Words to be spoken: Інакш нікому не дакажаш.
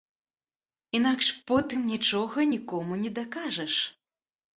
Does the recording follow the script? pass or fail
fail